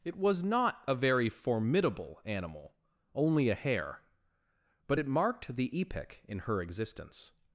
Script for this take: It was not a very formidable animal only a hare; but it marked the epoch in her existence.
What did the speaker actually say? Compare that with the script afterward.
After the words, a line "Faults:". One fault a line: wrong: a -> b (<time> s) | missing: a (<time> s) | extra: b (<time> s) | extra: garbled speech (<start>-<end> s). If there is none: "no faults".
It was not a very formidable animal only a hare; but it marked the epoch in her existence.
Faults:
no faults